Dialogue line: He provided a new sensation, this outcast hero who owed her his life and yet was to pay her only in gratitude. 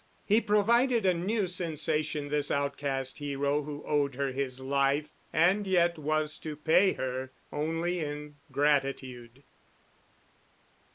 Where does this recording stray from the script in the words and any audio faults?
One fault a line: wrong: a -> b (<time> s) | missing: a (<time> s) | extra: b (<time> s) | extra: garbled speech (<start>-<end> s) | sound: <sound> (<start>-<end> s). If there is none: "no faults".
no faults